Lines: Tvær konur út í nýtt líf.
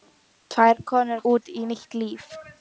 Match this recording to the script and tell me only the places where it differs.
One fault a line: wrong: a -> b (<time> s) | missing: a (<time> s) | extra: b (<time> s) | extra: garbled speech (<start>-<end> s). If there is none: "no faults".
no faults